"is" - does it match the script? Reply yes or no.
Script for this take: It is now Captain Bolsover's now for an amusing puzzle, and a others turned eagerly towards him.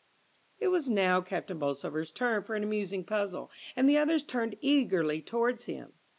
no